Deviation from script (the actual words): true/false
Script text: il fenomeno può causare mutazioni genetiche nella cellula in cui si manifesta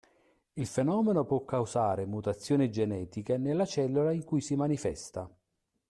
false